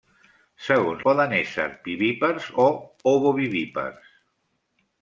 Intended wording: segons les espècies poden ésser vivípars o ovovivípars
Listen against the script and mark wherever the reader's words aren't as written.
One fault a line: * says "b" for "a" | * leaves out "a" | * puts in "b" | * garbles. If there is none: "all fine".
* leaves out "les espècies"